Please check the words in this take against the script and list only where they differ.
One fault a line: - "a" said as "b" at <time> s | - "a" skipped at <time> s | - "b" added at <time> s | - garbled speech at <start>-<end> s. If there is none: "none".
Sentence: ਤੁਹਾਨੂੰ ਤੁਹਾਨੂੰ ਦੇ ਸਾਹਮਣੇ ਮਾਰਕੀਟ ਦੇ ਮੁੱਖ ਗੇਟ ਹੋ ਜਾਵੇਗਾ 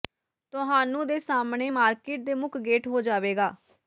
- "ਤੁਹਾਨੂੰ" skipped at 1.1 s